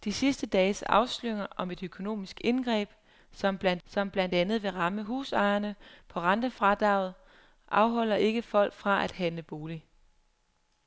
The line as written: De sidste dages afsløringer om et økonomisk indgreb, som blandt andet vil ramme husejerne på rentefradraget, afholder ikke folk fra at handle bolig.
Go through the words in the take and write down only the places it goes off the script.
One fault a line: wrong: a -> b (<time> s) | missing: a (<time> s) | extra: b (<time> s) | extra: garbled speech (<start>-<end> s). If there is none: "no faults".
extra: som blandt (3.8 s)